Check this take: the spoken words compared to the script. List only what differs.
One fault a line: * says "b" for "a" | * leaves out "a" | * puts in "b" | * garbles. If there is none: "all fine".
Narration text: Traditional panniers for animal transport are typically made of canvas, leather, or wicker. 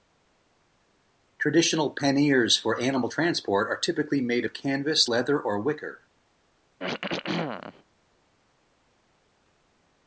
all fine